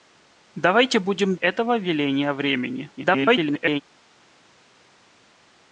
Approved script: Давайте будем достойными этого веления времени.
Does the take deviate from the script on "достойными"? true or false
true